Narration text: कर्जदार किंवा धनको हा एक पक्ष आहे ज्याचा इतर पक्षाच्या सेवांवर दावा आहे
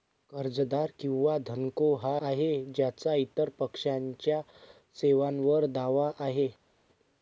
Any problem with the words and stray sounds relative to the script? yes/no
yes